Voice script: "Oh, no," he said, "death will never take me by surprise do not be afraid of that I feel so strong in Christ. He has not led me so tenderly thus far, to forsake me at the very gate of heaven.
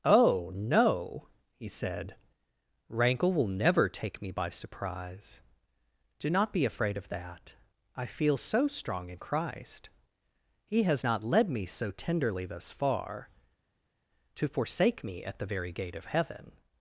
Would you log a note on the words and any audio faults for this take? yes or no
yes